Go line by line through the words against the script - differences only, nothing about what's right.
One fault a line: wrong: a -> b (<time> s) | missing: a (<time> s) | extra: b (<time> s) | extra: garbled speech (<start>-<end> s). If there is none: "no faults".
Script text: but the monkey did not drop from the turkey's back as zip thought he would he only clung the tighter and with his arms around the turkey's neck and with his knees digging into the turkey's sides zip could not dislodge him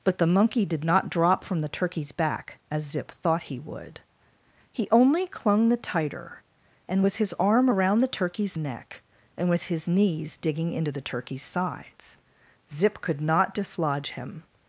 wrong: arms -> arm (7.4 s)